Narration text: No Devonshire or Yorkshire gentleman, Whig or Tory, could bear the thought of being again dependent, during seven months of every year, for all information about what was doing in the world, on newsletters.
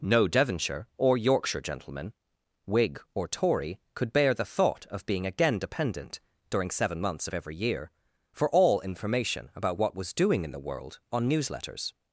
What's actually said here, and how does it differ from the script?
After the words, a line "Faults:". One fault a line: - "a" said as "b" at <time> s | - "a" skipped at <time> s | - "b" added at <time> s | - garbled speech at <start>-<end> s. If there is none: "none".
No Devonshire or Yorkshire gentleman, Whig or Tory, could bear the thought of being again dependent, during seven months of every year, for all information about what was doing in the world, on newsletters.
Faults:
none